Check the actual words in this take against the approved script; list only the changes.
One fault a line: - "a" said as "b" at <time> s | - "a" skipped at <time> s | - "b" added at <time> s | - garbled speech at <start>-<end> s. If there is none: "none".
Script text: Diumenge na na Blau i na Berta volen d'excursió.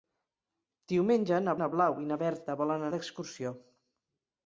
none